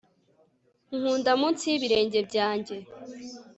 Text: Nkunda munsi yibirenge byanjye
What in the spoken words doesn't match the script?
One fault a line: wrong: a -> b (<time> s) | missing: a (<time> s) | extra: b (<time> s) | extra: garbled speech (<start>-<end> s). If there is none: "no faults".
no faults